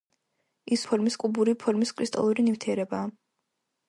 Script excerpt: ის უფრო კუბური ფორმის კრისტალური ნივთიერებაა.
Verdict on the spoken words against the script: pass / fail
fail